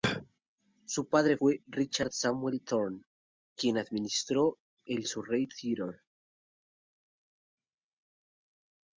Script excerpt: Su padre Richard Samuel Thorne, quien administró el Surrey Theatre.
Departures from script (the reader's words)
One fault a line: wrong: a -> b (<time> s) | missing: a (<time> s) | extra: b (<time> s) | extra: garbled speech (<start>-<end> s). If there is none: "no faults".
extra: fue (1.3 s)